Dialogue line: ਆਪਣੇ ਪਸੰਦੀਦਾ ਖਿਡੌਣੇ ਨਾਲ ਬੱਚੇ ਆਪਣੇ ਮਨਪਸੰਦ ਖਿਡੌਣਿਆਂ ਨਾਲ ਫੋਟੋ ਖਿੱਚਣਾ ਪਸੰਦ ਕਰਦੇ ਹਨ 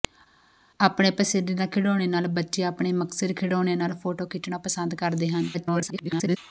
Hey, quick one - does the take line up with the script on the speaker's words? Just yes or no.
no